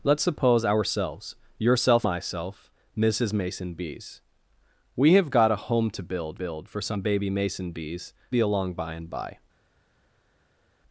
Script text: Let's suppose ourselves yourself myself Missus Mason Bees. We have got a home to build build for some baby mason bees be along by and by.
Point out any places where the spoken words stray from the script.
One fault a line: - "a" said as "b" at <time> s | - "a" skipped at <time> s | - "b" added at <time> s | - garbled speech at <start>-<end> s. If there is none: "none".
none